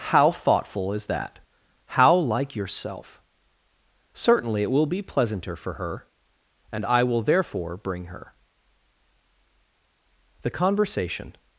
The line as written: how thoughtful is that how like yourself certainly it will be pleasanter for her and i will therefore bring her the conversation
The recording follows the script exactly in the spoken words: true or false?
true